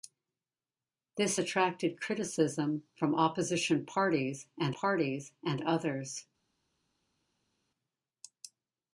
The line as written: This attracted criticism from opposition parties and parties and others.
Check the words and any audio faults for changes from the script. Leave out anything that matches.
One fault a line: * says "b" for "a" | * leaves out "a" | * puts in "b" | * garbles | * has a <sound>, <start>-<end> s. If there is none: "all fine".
all fine